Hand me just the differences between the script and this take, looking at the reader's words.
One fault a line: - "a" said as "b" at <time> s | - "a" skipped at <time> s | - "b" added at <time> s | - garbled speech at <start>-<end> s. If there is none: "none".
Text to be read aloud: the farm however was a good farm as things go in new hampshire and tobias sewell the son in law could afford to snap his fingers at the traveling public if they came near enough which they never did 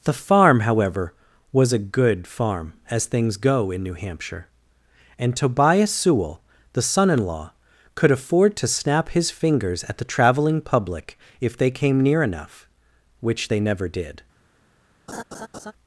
none